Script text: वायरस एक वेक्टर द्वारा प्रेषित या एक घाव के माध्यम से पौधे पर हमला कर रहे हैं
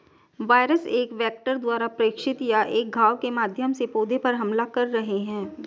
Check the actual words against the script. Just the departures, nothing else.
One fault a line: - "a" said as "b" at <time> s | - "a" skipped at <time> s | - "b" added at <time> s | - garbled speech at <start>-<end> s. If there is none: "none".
none